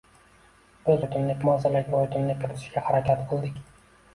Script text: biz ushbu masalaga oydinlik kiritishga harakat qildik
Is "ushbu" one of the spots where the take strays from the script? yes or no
yes